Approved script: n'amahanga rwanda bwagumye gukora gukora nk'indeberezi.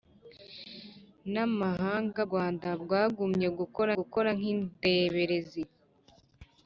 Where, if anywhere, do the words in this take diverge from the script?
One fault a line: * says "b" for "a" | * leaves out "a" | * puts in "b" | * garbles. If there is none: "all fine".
all fine